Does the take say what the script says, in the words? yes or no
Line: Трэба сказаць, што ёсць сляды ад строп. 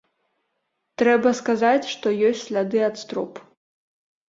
yes